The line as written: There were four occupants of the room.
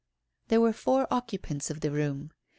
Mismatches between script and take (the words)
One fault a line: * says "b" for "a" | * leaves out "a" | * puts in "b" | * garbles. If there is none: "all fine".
all fine